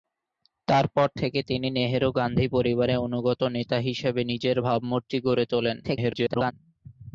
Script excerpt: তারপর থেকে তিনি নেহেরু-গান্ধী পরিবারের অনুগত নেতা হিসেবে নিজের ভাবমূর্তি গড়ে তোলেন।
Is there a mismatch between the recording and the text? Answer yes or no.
yes